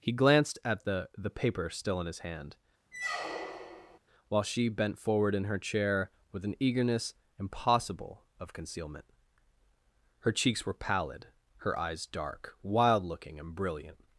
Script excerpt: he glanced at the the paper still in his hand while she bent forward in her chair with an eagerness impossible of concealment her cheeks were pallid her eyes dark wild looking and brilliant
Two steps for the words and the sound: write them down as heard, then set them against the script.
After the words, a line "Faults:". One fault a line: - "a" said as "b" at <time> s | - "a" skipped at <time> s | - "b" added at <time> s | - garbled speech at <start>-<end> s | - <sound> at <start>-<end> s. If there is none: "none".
he glanced at the the paper still in his hand while she bent forward in her chair with an eagerness impossible of concealment her cheeks were pallid her eyes dark wild looking and brilliant
Faults:
- squeak at 2.9-4.0 s